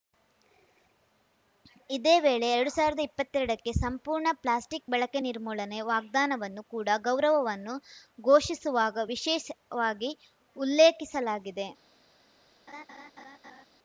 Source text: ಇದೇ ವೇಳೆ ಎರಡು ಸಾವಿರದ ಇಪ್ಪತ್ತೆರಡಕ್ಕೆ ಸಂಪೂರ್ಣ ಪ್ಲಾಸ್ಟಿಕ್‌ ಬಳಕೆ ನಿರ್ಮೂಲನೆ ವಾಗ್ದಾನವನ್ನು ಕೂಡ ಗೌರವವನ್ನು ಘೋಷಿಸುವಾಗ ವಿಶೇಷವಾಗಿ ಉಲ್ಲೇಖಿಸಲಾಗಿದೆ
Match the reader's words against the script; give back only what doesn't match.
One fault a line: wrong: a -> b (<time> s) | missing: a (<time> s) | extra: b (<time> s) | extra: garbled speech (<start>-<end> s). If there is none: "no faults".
no faults